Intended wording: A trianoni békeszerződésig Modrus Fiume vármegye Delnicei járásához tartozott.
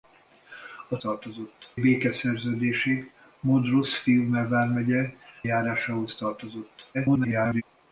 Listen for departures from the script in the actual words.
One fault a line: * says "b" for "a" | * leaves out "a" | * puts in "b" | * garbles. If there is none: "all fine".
* says "tartozott" for "trianoni"
* leaves out "Delnicei"
* garbles